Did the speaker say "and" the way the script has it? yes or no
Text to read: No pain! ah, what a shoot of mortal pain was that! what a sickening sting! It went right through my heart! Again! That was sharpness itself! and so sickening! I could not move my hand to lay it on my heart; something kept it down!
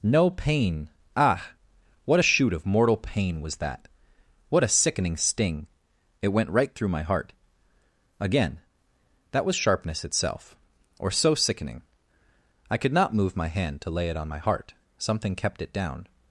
no